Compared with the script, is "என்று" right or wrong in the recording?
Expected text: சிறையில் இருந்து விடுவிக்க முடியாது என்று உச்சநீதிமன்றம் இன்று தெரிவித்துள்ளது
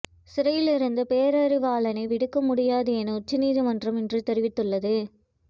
wrong